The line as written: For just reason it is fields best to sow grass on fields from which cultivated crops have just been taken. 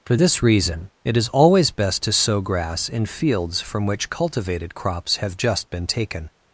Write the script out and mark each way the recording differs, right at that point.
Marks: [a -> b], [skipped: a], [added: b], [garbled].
For [just -> this] reason it is [fields -> always] best to sow grass [on -> in] fields from which cultivated crops have just been taken.